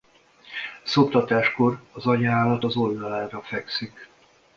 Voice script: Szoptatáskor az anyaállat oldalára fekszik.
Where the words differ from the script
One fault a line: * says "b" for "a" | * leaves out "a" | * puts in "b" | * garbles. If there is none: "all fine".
* puts in "az"